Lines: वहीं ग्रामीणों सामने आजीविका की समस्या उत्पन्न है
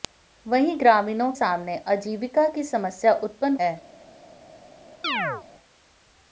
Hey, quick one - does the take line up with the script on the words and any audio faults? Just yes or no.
no